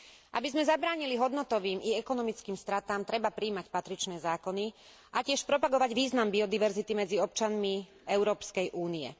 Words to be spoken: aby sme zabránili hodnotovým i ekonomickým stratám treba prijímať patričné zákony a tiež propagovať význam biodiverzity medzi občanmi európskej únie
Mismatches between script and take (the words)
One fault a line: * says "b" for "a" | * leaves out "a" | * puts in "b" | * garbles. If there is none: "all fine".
all fine